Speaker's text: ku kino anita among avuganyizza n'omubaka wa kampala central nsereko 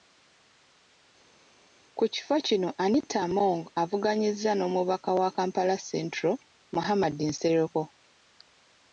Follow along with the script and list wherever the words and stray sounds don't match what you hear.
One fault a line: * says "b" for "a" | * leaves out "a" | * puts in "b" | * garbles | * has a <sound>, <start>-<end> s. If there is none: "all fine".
* puts in "kifo"
* puts in "muhammad"